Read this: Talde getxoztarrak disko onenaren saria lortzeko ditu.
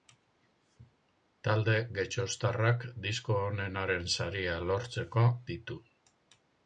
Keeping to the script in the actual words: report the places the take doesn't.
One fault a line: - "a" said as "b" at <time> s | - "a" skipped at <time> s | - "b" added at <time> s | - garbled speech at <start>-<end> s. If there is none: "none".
none